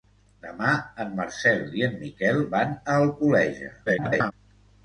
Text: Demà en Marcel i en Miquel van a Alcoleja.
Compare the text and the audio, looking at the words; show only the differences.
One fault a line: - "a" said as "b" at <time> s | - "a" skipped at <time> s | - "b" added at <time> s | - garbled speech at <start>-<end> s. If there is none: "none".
- garbled speech at 3.9-4.3 s